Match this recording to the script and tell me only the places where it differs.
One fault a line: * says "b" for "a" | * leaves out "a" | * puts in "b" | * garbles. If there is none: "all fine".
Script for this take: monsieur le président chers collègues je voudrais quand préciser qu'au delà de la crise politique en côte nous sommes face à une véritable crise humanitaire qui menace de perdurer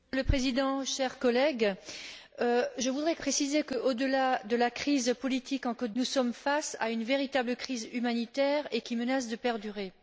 all fine